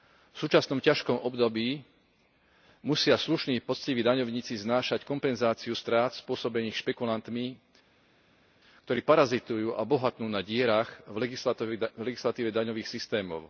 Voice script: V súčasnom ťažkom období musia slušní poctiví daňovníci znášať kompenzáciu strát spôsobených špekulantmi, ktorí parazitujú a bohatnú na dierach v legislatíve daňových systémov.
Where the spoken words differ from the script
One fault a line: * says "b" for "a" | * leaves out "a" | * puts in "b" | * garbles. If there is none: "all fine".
all fine